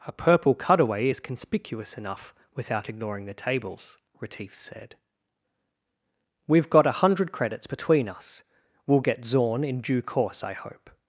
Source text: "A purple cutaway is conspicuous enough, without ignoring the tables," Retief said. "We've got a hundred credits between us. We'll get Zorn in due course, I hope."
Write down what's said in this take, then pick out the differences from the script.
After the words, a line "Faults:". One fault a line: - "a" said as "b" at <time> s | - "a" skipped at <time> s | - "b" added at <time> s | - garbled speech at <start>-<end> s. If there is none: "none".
"A purple cutaway is conspicuous enough, without ignoring the tables," Retief said. "We've got a hundred credits between us. We'll get Zorn in due course, I hope."
Faults:
none